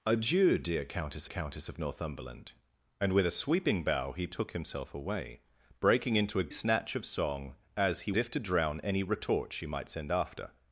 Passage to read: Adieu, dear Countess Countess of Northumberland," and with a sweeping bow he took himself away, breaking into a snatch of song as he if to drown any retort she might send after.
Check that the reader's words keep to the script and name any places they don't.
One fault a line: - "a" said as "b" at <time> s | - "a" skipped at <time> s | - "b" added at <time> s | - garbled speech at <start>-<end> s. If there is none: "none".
none